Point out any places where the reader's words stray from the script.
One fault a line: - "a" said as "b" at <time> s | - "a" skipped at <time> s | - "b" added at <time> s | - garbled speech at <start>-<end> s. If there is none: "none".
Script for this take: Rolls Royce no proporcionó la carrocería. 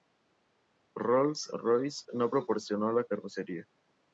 none